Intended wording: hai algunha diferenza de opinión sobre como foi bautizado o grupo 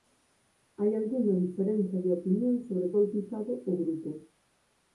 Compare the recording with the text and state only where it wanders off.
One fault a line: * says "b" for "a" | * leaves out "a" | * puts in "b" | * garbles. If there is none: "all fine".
* leaves out "como foi"